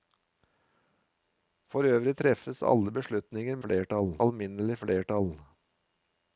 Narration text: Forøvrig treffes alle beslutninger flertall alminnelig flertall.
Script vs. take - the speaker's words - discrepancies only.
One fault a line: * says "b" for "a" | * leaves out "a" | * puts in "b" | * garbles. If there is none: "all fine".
all fine